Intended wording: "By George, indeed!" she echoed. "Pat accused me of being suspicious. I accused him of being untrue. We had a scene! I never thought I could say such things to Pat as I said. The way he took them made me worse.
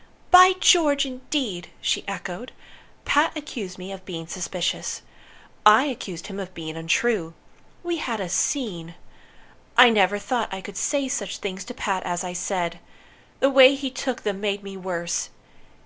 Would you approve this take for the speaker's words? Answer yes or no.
yes